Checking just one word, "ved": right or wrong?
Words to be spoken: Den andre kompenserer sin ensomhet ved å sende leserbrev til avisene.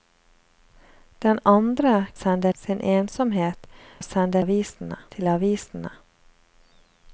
wrong